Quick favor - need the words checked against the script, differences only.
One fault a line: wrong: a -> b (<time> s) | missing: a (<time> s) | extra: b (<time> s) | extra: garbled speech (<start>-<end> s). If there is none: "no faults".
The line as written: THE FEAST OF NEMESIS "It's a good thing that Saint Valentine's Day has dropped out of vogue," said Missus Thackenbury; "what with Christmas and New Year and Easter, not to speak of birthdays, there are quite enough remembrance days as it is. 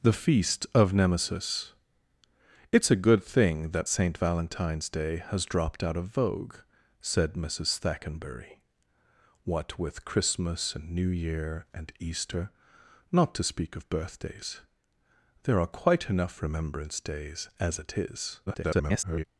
extra: garbled speech (18.5-19.2 s)